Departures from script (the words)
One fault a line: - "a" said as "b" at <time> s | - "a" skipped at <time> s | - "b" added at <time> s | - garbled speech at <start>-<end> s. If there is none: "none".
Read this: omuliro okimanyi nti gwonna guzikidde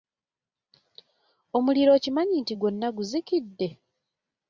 none